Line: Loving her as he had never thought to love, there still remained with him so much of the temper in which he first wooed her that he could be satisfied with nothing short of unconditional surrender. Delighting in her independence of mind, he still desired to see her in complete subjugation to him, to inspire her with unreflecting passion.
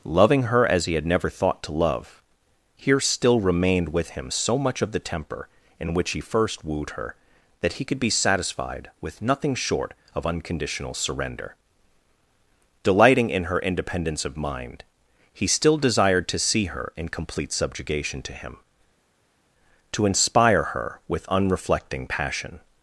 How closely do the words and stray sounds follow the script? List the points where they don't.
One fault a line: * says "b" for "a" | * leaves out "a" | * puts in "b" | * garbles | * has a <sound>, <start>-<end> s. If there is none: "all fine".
* says "here" for "there"